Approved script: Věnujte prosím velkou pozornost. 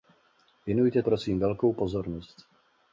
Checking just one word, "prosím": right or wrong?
right